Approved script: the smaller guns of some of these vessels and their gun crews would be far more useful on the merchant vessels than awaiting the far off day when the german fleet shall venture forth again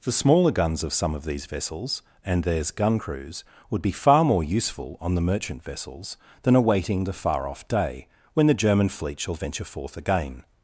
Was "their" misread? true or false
true